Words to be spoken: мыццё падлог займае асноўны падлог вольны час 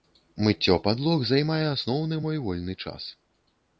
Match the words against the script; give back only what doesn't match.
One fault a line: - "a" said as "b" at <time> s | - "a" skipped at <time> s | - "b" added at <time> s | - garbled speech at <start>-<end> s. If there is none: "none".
- "падлог" said as "мой" at 2.3 s